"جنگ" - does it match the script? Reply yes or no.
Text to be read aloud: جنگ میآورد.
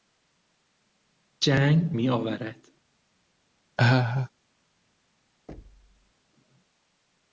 yes